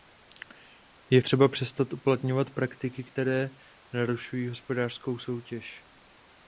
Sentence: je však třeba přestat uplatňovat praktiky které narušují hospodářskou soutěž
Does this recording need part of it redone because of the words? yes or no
yes